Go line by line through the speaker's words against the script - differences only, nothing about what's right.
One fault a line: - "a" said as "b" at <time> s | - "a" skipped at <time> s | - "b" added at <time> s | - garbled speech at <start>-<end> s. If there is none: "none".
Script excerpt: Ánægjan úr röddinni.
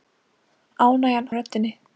none